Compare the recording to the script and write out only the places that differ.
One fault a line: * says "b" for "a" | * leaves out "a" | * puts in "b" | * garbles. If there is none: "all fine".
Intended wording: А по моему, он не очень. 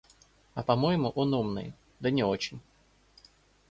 * puts in "умный да"